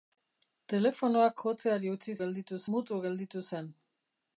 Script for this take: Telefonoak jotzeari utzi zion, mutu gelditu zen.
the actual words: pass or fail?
fail